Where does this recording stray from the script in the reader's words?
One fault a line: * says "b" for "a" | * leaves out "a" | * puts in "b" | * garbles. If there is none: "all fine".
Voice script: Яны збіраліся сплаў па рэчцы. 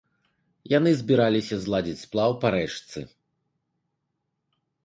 * puts in "зладзіць"